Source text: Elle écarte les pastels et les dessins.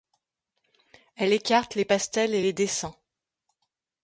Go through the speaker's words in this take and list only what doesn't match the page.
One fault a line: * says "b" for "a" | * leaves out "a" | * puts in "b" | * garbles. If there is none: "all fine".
all fine